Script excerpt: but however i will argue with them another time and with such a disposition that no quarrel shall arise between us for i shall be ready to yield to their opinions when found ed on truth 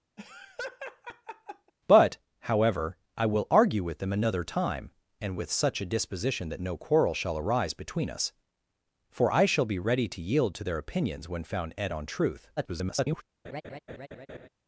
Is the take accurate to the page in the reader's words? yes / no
no